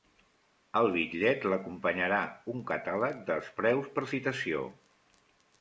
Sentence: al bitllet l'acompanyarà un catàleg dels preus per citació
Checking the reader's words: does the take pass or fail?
pass